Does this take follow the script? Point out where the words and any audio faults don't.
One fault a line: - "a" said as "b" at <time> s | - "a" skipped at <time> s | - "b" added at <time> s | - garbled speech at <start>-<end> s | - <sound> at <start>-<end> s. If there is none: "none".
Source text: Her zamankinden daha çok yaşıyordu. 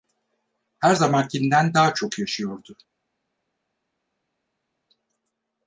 none